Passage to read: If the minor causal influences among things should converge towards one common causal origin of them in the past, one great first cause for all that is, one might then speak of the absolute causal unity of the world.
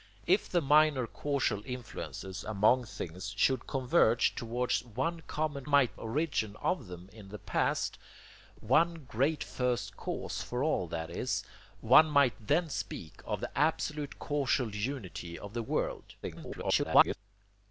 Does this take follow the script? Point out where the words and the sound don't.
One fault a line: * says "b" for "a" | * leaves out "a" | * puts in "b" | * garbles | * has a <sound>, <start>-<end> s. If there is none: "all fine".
* says "might" for "causal"
* garbles